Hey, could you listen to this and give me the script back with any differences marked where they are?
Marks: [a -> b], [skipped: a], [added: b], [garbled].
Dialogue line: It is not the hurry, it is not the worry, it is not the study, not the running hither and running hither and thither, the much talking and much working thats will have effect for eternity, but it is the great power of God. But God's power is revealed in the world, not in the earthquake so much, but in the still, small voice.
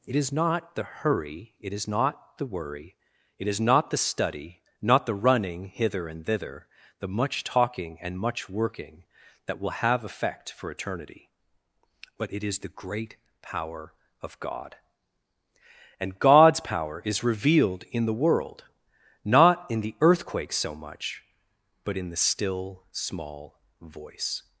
It is not the hurry, it is not the worry, it is not the study, not the running hither and [skipped: running hither and] thither, the much talking and much working [thats -> that] will have effect for eternity, but it is the great power of God. [But -> And] God's power is revealed in the world, not in the earthquake so much, but in the still, small voice.